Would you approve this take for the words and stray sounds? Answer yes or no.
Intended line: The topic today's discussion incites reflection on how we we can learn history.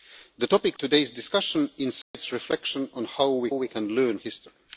no